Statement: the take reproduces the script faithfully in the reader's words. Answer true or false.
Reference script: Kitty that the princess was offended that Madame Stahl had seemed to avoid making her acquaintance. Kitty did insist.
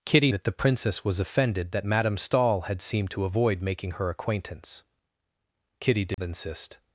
true